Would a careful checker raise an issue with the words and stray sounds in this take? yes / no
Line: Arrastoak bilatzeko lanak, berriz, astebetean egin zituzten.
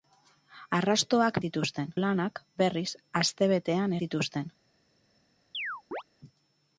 yes